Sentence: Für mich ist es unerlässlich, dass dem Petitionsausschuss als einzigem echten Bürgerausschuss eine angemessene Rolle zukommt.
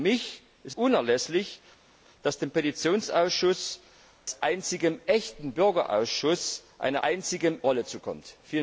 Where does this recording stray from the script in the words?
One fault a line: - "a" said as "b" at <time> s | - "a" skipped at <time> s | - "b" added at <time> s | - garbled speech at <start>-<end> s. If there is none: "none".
- "es" skipped at 0.7 s
- "angemessene" said as "einzigem" at 7.0 s